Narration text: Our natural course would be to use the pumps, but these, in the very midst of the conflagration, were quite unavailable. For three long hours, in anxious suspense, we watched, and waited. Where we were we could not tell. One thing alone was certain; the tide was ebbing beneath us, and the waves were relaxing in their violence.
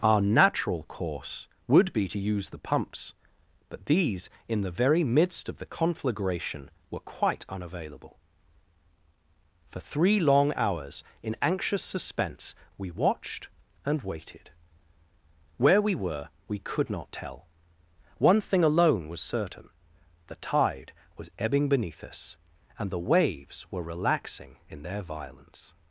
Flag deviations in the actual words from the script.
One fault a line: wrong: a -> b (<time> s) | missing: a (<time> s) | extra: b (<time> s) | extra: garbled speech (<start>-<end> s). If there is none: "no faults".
no faults